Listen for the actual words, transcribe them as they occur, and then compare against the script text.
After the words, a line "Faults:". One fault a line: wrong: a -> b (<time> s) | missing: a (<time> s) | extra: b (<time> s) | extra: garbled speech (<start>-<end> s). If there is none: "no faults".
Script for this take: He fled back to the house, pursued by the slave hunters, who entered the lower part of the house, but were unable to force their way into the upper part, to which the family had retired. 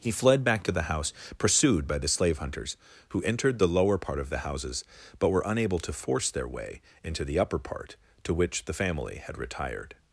He fled back to the house, pursued by the slave hunters, who entered the lower part of the houses, but were unable to force their way into the upper part, to which the family had retired.
Faults:
wrong: house -> houses (4.4 s)